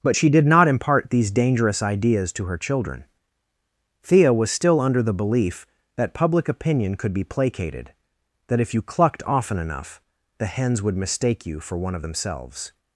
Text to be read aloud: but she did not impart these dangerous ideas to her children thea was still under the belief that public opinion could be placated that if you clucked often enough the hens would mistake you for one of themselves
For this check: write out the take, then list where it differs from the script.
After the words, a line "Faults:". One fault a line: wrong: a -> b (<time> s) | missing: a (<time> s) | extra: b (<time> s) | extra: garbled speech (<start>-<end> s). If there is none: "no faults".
but she did not impart these dangerous ideas to her children thea was still under the belief that public opinion could be placated that if you clucked often enough the hens would mistake you for one of themselves
Faults:
no faults